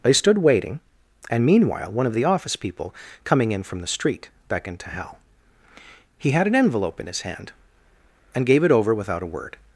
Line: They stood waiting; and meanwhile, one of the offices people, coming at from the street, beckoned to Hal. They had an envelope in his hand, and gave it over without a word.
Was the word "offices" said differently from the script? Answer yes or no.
yes